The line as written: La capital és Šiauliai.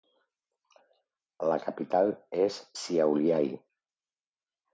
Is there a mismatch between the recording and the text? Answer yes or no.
no